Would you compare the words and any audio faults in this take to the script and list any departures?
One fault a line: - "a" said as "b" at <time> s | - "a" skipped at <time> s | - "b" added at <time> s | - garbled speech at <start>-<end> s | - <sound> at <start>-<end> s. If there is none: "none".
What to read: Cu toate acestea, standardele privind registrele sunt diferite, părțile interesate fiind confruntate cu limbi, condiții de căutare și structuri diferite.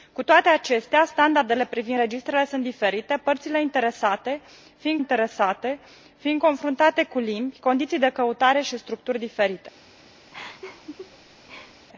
- "interesate fiind" added at 5.0 s
- laugh at 10.3-11.8 s